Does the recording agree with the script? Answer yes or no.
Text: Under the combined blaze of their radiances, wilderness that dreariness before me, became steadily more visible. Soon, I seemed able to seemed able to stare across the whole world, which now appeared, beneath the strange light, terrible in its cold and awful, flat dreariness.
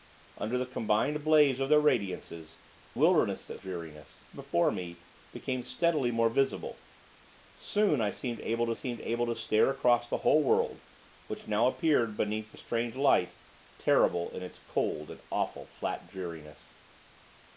yes